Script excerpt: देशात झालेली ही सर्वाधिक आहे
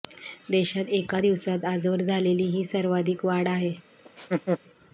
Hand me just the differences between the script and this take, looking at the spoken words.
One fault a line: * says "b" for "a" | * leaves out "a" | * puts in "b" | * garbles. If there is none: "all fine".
* puts in "एका दिवसात आजवर"
* puts in "वाढ"